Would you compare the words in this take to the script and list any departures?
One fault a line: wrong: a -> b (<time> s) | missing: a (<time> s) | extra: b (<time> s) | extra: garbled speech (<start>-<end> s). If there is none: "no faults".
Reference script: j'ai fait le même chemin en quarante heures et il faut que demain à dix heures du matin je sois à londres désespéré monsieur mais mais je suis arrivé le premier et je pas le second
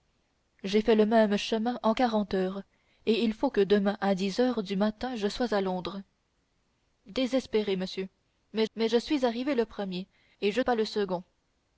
no faults